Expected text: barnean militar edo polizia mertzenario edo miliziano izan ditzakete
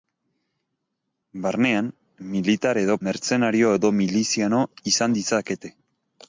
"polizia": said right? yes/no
no